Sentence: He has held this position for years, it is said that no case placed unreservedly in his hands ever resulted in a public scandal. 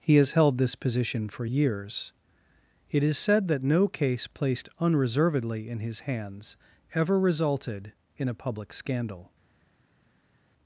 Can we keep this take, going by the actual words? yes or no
yes